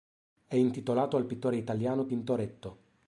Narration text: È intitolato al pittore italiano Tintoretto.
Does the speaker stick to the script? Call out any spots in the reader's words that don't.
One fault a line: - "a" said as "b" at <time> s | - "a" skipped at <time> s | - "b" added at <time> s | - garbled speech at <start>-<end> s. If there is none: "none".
none